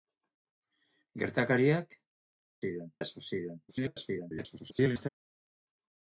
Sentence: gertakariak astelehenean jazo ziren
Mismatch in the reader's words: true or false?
true